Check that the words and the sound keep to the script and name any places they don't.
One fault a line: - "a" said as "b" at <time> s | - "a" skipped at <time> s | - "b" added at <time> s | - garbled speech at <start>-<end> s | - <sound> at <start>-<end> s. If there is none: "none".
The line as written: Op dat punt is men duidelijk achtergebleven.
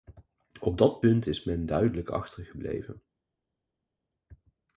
none